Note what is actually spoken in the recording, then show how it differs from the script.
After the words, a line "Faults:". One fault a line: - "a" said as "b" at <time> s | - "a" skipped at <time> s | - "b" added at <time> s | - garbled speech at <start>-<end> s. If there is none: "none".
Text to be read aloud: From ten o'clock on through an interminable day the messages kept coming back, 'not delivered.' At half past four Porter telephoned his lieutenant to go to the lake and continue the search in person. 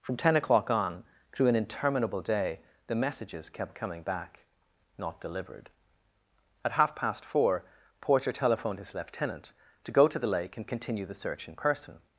From ten o'clock on through an interminable day the messages kept coming back, 'not delivered.' At half past four Porter telephoned his lieutenant to go to the lake and continue the search in person.
Faults:
none